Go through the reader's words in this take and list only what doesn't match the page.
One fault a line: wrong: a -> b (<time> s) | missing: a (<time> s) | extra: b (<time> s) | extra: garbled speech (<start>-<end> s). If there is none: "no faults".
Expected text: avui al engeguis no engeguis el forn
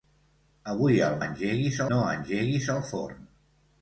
no faults